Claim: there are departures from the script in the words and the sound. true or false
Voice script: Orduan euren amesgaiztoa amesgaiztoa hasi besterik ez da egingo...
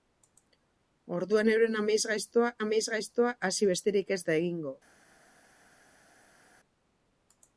false